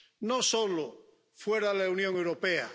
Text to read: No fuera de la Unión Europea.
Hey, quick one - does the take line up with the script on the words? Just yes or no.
no